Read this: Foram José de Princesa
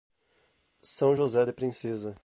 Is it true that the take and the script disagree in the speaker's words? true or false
true